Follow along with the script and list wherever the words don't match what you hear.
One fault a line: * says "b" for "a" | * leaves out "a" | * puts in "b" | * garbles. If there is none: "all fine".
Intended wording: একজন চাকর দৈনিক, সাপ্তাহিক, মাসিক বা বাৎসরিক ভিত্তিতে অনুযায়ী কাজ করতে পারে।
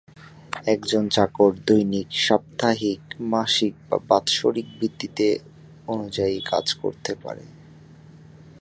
all fine